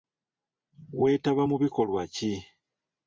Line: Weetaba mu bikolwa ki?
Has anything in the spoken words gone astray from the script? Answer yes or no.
no